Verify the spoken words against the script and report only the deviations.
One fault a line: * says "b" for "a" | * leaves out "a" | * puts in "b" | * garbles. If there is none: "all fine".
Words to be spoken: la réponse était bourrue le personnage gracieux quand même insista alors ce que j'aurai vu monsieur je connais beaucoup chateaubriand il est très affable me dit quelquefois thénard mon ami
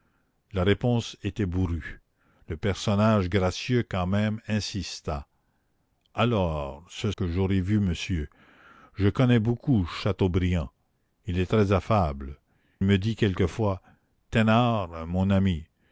all fine